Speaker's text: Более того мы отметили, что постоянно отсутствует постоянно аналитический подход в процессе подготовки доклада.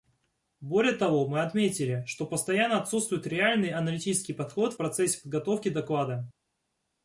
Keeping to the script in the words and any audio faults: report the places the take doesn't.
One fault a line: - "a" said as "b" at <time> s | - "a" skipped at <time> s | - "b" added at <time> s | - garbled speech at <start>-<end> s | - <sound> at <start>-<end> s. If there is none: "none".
- "постоянно" said as "реальный" at 3.2 s